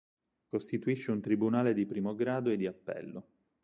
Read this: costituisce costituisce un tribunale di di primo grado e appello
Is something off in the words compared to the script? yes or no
yes